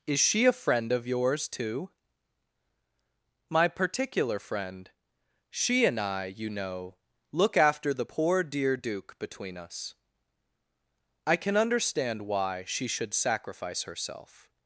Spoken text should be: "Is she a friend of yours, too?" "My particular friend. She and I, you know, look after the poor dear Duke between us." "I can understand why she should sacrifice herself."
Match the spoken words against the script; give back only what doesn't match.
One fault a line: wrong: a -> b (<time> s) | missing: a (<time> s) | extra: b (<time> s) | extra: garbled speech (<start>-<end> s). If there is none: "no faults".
no faults